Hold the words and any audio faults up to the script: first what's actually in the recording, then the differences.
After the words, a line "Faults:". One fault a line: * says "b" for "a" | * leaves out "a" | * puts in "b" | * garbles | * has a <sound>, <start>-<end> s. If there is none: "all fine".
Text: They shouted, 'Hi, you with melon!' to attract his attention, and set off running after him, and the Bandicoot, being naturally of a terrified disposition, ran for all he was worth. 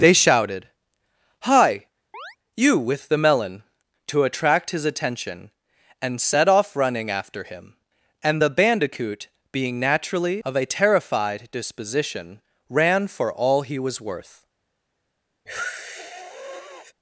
They shouted, 'Hi, you with the melon!' to attract his attention, and set off running after him, and the Bandicoot, being naturally of a terrified disposition, ran for all he was worth.
Faults:
* has a chirp, 2.1-2.4 s
* puts in "the"
* has a sniff, 15.5-16.9 s